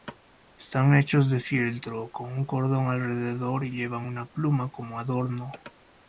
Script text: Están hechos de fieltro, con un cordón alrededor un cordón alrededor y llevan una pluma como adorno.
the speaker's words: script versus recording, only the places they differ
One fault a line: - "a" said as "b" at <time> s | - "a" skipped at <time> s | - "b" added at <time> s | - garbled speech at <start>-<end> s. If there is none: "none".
- "un cordón alrededor" skipped at 3.6 s